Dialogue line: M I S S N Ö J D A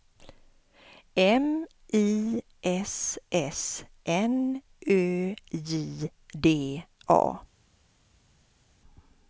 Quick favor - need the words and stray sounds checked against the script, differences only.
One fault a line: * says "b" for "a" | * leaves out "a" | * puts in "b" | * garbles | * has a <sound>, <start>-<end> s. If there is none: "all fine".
all fine